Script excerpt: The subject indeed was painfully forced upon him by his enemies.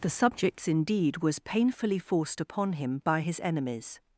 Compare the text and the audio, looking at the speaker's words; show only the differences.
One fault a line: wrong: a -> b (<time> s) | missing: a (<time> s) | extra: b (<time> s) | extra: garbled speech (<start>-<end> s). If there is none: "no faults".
wrong: subject -> subjects (0.1 s)